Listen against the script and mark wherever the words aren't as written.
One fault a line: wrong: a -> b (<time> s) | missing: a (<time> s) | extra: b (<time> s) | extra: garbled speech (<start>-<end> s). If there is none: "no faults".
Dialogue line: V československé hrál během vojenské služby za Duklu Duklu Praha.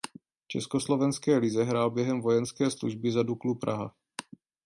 extra: lize (1.4 s)
missing: Duklu (3.5 s)